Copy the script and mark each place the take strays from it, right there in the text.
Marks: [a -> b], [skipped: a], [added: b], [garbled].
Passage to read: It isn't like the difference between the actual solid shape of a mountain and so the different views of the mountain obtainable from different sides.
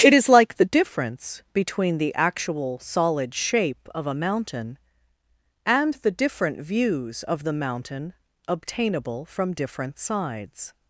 It [isn't -> is] like the difference between the actual solid shape of a mountain and [skipped: so] the different views of the mountain obtainable from different sides.